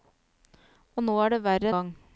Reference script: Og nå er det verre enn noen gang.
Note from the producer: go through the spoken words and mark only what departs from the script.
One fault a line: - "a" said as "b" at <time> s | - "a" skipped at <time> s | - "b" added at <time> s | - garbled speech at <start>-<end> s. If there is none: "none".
- "enn noen" skipped at 1.7 s